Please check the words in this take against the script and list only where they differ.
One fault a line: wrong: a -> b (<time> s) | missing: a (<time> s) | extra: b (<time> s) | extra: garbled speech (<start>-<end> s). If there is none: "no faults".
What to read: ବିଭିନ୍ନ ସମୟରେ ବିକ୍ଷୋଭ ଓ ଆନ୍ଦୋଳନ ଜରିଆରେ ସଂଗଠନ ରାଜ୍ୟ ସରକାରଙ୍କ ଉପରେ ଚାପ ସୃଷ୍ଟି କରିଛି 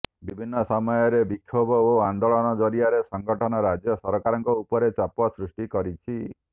no faults